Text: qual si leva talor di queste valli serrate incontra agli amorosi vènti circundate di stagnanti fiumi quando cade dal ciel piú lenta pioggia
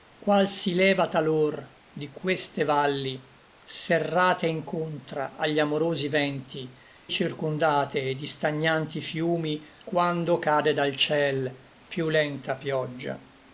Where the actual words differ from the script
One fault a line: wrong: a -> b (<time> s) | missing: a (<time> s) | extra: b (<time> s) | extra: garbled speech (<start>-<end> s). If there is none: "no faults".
no faults